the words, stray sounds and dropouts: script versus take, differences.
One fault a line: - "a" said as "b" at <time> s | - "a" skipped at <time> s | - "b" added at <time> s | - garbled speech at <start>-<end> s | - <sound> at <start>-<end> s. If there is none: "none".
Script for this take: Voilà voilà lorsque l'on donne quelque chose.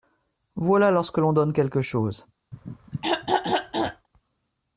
- "voilà" skipped at 0.9 s
- throat clearing at 2.5-4.1 s